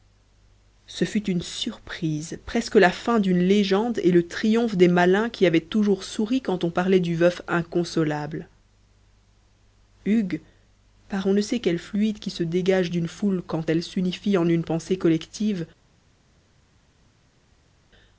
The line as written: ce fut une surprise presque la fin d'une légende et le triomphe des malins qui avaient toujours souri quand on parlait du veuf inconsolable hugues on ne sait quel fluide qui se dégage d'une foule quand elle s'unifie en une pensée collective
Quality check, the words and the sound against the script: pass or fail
fail